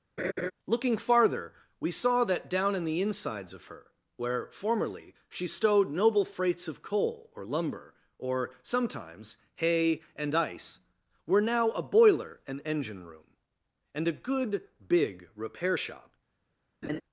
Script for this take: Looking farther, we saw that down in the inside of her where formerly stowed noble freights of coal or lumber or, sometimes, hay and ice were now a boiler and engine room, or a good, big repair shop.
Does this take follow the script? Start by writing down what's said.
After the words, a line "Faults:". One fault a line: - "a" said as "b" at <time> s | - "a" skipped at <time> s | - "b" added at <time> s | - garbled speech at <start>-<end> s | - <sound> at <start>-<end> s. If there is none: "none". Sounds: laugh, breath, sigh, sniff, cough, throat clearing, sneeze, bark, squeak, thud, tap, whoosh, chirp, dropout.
Looking farther, we saw that down in the insides of her where formerly she stowed noble freights of coal or lumber or, sometimes, hay and ice were now a boiler and engine room, and a good, big repair shop.
Faults:
- laugh at 0.2-0.5 s
- "inside" said as "insides" at 3.0 s
- "she" added at 5.3 s
- "or" said as "and" at 13.9 s
- laugh at 16.8-17.0 s